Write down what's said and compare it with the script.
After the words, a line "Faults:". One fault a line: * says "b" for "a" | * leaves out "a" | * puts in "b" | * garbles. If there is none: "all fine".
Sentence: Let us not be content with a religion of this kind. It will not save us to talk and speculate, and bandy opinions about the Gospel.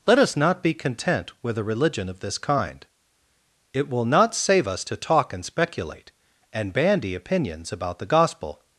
Let us not be content with a religion of this kind. It will not save us to talk and speculate, and bandy opinions about the Gospel.
Faults:
all fine